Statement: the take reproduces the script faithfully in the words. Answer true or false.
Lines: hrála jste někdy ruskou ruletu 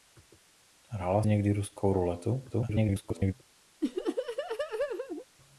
false